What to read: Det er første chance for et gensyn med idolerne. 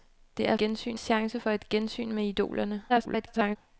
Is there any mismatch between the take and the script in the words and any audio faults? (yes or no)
yes